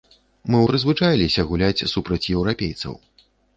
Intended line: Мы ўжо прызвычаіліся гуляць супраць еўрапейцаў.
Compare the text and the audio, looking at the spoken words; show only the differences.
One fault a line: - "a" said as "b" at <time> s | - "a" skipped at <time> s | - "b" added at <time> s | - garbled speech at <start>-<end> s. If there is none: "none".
- "ўжо" skipped at 0.6 s